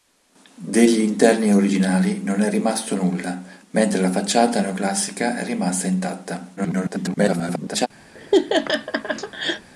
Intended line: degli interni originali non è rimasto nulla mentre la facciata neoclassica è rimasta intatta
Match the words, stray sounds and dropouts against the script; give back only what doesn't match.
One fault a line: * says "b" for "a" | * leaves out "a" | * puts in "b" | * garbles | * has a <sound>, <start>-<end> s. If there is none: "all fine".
* garbles
* has a laugh, 8.1-9.7 s